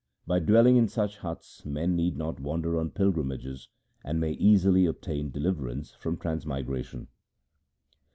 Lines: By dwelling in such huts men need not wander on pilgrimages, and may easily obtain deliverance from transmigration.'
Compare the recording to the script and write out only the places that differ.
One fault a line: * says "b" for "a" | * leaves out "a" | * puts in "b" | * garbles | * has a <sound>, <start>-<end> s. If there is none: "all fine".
all fine